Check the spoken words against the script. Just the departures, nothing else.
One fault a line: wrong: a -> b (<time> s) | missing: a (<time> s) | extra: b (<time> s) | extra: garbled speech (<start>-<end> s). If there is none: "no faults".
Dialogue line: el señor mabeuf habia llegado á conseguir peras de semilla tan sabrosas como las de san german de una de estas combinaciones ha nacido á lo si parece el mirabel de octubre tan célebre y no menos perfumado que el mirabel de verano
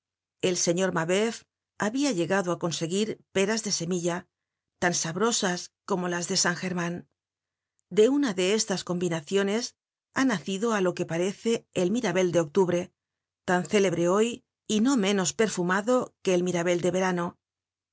wrong: si -> que (11.0 s)
extra: hoy (14.2 s)